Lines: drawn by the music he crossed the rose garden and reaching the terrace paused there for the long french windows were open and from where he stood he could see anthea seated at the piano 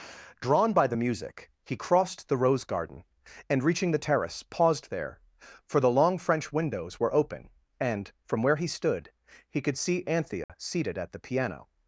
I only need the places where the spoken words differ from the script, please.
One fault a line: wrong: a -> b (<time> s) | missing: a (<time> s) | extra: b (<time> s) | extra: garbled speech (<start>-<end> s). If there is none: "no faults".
no faults